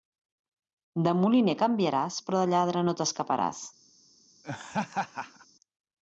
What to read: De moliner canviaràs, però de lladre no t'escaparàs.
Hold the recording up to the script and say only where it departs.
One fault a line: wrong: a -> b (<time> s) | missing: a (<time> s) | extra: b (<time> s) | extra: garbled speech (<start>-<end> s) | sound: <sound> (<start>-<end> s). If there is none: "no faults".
sound: laugh (4.4-5.5 s)